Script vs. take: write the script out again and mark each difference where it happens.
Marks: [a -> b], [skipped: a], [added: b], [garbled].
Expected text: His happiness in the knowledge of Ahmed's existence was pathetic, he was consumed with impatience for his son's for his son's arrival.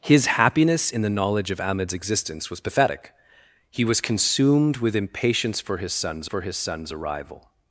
His happiness in the knowledge of Ahmed's existence was pathetic, he was consumed with impatience for his son's for his son's arrival.